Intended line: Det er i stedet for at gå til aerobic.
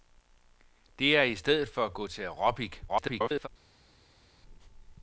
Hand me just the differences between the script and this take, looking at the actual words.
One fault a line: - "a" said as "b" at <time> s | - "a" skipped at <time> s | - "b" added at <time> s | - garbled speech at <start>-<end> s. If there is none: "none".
- garbled speech at 2.9-3.5 s